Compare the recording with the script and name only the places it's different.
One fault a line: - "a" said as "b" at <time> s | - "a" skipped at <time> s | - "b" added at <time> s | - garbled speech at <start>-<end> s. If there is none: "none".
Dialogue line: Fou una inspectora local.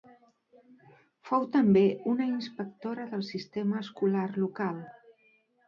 - "també" added at 1.6 s
- "del sistema escolar" added at 3.1 s